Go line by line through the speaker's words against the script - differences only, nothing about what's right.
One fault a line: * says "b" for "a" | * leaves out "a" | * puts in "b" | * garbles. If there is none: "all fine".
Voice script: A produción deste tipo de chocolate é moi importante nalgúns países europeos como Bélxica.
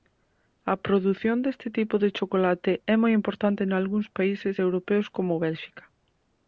all fine